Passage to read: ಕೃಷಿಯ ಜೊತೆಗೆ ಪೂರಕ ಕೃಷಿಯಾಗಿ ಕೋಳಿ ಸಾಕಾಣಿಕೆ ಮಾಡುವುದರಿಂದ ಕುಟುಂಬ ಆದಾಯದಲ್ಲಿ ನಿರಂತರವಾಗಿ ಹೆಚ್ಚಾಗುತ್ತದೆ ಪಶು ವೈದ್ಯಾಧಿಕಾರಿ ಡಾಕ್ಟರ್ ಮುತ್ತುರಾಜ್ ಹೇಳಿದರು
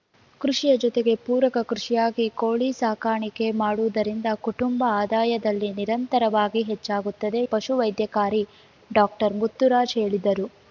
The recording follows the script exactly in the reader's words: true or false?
true